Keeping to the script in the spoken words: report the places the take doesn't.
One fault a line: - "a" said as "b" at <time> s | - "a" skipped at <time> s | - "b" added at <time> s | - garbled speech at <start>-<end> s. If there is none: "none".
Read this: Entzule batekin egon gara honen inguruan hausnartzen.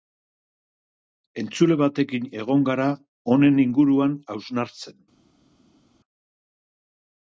none